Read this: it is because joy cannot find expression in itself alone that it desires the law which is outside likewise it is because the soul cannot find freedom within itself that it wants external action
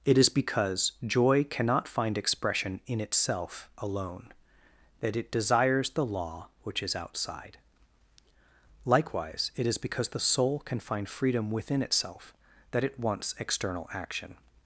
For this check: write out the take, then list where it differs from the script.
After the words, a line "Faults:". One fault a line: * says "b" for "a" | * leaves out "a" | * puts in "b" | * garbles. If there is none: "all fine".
it is because joy cannot find expression in itself alone that it desires the law which is outside likewise it is because the soul can find freedom within itself that it wants external action
Faults:
* says "can" for "cannot"